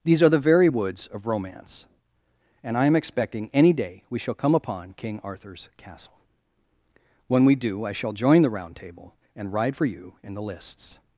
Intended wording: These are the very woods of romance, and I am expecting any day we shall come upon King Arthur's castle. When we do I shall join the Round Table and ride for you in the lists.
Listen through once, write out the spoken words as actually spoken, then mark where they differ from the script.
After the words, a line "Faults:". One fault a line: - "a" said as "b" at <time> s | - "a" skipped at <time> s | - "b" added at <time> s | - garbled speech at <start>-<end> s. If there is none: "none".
These are the very woods of romance, and I am expecting any day we shall come upon King Arthur's castle. When we do I shall join the Round Table and ride for you in the lists.
Faults:
none